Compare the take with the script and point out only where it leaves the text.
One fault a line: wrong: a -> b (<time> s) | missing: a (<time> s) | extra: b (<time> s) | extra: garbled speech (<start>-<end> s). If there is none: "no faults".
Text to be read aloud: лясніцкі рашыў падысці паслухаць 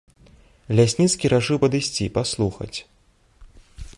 no faults